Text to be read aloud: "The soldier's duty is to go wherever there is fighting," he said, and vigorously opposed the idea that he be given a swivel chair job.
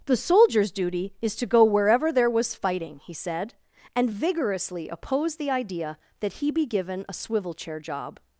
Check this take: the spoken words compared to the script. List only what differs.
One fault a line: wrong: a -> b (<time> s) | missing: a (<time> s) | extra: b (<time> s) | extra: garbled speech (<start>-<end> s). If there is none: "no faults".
wrong: is -> was (2.3 s)